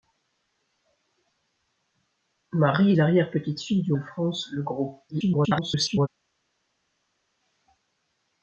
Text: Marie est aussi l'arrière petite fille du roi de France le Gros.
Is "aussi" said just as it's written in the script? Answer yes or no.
no